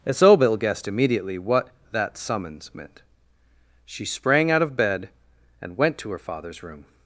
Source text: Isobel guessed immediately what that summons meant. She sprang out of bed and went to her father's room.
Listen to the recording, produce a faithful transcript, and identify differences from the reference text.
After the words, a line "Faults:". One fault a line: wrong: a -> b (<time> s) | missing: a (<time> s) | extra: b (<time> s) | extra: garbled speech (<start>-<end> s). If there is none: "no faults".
Isobel guessed immediately what that summons meant. She sprang out of bed and went to her father's room.
Faults:
no faults